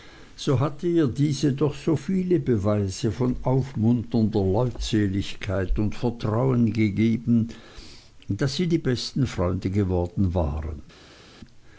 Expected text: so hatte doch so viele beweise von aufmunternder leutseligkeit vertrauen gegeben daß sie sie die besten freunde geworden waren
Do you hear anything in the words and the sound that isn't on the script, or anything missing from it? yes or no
yes